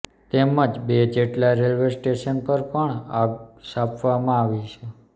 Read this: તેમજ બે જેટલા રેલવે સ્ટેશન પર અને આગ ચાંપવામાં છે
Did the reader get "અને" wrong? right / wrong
wrong